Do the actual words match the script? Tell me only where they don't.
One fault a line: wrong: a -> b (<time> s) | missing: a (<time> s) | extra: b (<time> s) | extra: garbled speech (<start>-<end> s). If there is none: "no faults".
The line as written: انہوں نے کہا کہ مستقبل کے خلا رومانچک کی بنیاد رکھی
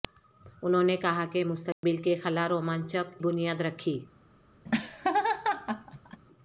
missing: کی (3.2 s)